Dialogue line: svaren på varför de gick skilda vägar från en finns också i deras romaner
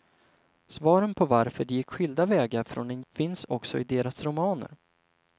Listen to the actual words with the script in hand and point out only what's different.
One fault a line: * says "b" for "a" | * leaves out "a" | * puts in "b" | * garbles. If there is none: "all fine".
all fine